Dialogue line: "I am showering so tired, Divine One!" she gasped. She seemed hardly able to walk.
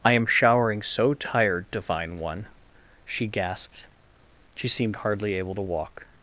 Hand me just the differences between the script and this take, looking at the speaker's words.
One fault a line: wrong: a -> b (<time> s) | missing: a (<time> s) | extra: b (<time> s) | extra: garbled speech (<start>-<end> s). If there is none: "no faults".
no faults